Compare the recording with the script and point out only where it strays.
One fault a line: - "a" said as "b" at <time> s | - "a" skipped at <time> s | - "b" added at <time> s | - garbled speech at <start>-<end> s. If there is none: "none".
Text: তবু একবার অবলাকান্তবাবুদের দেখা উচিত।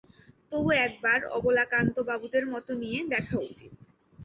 - "মত নিয়ে" added at 2.5 s